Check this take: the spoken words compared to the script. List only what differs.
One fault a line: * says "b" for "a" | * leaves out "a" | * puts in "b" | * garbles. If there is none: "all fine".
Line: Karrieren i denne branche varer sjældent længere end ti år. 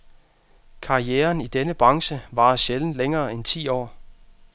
all fine